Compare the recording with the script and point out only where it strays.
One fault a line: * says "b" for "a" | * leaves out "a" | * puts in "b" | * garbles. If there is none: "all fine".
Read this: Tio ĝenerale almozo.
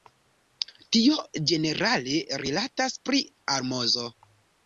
* puts in "rilatas pri"